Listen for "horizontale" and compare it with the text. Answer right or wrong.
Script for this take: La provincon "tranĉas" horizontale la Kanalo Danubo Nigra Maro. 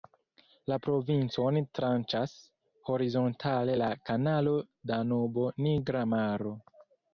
right